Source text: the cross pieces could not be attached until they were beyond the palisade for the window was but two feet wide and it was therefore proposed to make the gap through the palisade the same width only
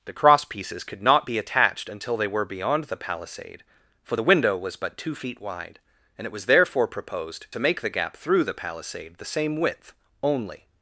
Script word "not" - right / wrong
right